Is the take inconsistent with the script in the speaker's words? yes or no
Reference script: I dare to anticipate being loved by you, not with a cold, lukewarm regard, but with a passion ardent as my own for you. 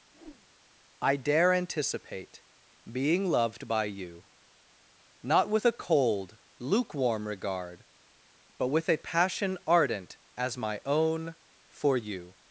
yes